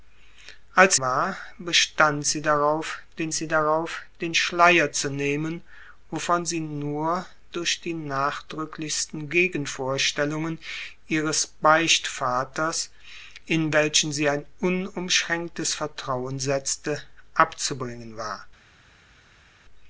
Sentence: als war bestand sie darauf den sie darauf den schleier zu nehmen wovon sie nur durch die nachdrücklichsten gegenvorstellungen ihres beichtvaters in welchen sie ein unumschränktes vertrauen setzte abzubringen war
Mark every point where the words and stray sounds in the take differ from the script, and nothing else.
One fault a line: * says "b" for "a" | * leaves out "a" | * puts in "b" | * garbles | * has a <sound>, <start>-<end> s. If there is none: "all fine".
all fine